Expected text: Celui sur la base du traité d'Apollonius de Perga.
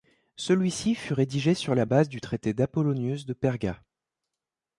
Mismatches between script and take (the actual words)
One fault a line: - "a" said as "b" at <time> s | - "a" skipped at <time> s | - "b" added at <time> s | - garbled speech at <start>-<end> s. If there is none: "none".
- "ci fut rédigé" added at 0.7 s